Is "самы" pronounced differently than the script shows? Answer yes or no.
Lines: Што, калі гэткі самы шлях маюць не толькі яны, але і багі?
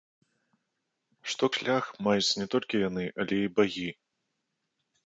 yes